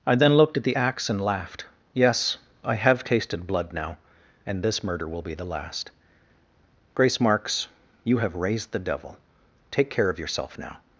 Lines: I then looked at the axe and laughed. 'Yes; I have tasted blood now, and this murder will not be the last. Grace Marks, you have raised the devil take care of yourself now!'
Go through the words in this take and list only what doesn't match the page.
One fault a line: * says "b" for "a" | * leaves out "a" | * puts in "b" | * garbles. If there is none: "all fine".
* leaves out "not"